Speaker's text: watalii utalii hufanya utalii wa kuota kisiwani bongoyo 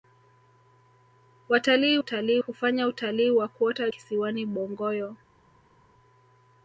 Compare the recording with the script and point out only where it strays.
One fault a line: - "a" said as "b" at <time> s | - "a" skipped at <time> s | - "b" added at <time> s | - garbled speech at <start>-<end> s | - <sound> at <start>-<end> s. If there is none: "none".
none